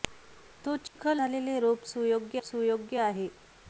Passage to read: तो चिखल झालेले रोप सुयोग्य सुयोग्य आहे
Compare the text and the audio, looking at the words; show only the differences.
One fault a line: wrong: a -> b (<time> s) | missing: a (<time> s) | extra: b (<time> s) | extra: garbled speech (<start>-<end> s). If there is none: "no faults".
no faults